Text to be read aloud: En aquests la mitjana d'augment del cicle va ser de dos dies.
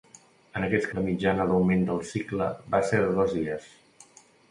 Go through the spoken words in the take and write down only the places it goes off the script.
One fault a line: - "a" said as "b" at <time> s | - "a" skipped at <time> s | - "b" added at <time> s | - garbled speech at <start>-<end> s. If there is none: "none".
none